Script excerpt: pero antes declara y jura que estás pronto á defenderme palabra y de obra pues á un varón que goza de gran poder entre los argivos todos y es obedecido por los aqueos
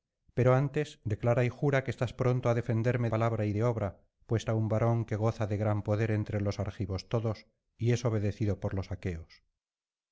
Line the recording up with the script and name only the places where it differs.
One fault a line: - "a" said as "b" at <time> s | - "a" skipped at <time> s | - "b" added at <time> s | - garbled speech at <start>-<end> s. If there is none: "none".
none